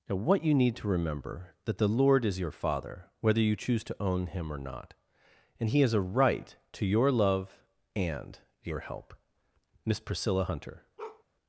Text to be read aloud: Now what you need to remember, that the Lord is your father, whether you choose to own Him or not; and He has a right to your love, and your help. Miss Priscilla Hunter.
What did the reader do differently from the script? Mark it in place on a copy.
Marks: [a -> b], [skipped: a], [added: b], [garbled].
Now what you need to remember, that the Lord is your father, whether you choose to own Him or not; and He has a right to your love, and your help. Miss Priscilla Hunter.